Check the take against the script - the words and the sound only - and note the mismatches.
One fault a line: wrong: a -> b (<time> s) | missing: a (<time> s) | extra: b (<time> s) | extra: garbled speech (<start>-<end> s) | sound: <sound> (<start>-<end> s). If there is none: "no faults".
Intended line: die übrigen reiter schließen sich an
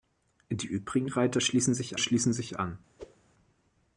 extra: schließen sich (2.0 s)
sound: whoosh (3.0-3.2 s)